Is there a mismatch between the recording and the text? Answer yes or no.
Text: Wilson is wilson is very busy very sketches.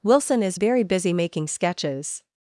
yes